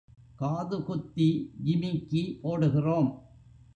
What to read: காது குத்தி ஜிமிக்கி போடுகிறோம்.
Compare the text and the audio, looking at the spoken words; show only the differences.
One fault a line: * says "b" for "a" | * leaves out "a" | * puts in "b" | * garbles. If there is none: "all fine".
all fine